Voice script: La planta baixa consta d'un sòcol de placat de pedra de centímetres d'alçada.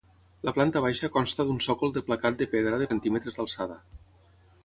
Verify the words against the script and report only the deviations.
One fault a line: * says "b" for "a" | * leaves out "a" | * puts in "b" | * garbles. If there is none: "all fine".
all fine